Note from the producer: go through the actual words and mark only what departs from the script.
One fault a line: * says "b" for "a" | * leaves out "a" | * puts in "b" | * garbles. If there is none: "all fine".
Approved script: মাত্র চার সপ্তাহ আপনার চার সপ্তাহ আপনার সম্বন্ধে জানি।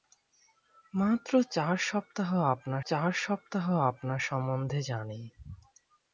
all fine